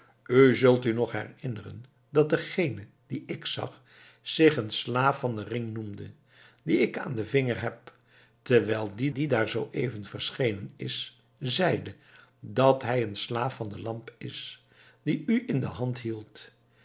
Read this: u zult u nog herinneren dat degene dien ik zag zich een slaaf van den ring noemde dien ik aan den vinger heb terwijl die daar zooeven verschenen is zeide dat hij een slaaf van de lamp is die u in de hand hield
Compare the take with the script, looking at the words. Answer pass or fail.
fail